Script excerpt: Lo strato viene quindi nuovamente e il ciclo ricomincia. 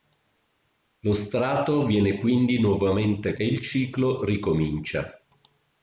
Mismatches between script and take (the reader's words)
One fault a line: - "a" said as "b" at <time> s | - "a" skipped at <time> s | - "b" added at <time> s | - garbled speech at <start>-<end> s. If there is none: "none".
none